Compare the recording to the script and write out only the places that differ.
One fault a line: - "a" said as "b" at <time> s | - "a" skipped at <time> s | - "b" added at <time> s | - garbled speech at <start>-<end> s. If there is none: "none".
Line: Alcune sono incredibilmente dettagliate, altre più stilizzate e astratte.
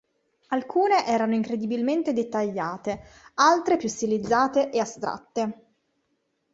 - "sono" said as "erano" at 1.1 s